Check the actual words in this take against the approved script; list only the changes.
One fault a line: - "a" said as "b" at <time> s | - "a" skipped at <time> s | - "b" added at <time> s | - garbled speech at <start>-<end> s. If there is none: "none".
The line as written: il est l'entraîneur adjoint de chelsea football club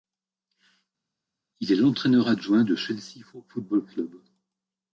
none